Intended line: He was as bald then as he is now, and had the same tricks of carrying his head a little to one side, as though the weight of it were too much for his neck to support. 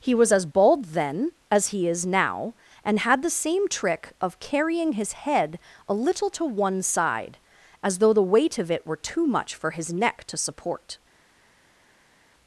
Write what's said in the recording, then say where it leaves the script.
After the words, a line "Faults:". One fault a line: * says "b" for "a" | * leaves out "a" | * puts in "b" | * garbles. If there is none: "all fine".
He was as bald then as he is now, and had the same trick of carrying his head a little to one side, as though the weight of it were too much for his neck to support.
Faults:
* says "trick" for "tricks"